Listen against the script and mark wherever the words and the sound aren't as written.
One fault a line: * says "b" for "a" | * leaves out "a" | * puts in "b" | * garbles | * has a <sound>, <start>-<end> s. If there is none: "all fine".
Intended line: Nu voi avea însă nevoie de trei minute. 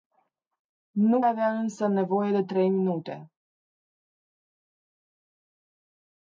* leaves out "voi"